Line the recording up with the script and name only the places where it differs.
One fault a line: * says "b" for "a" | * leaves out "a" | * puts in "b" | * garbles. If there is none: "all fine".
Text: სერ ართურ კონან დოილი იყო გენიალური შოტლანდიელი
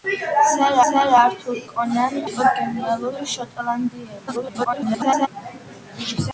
* puts in "სერ"
* leaves out "დოილი"
* garbles